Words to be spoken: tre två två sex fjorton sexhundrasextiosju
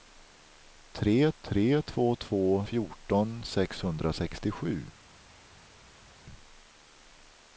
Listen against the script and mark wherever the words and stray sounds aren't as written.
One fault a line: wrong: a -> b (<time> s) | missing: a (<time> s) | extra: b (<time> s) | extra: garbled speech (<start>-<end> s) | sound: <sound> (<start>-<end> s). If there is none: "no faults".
extra: tre (1.4 s)
missing: sex (2.6 s)